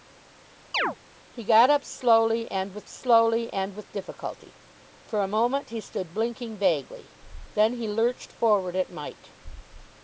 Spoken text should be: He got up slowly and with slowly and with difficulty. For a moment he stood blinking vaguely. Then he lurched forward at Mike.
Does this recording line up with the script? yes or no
yes